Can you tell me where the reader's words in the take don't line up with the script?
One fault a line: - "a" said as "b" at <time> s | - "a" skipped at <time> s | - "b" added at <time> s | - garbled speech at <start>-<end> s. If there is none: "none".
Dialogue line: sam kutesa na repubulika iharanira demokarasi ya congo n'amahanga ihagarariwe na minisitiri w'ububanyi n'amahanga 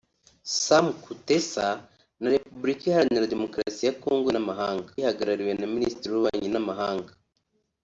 none